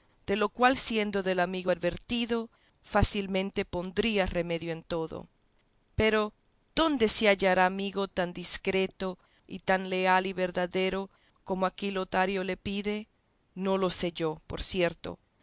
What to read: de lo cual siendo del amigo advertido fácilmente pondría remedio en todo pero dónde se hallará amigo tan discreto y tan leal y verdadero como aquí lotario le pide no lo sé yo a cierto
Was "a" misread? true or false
true